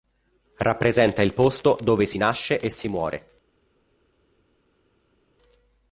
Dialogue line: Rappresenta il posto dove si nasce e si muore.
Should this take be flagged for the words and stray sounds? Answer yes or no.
no